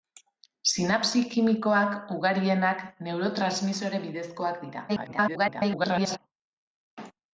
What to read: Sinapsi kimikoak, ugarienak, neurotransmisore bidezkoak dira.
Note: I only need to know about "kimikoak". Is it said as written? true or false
true